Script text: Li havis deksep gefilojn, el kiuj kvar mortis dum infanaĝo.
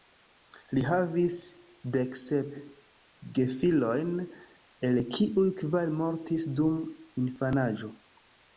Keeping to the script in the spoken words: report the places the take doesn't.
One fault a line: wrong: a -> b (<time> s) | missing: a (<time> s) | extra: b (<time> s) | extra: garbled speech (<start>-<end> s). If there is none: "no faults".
no faults